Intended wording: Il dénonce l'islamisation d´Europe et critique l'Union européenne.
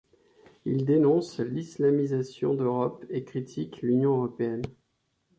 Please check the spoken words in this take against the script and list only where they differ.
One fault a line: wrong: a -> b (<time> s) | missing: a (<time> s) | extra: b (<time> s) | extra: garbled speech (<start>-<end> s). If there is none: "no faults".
no faults